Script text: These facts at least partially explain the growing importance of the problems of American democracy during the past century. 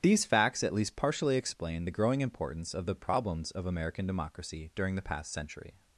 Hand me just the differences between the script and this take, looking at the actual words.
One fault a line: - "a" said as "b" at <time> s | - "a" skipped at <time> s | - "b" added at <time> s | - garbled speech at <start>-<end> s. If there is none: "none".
none